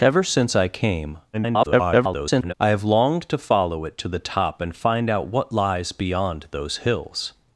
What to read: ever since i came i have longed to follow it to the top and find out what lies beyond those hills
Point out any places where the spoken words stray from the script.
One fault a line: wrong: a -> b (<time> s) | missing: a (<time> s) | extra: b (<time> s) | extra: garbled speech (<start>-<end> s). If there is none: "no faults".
extra: garbled speech (1.3-2.5 s)